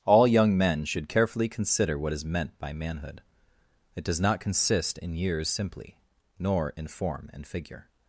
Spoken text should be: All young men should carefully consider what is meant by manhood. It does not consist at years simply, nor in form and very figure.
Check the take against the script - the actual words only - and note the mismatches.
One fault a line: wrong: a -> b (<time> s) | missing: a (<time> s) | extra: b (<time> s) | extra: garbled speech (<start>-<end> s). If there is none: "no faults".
wrong: at -> in (5.0 s)
missing: very (7.5 s)